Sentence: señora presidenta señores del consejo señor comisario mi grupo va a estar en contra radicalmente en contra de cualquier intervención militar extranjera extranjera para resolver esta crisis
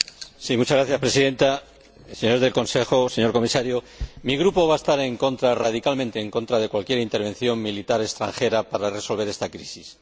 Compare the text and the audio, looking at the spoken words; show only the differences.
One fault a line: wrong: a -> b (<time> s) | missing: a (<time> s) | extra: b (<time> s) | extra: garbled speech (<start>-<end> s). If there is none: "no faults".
missing: extranjera (8.6 s)